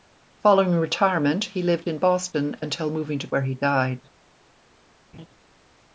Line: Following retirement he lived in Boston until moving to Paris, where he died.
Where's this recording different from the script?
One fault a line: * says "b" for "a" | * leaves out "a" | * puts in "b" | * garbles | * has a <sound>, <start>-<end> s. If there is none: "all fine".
* leaves out "Paris"
* has a laugh, 5.1-5.3 s